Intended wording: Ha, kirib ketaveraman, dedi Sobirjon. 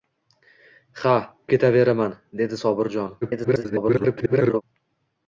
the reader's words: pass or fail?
fail